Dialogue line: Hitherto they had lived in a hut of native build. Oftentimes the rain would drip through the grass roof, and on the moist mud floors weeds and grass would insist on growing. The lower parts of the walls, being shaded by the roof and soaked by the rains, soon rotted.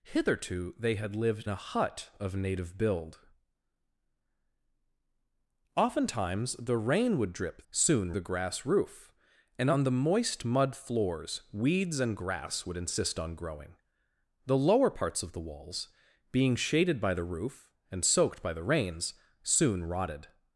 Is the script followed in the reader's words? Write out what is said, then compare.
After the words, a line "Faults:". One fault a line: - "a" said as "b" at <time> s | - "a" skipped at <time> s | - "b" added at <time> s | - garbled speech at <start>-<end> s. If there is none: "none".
Hitherto they had lived a hut of native build. Oftentimes the rain would drip soon the grass roof, and on the moist mud floors weeds and grass would insist on growing. The lower parts of the walls, being shaded by the roof and soaked by the rains, soon rotted.
Faults:
- "in" skipped at 1.5 s
- "through" said as "soon" at 7.7 s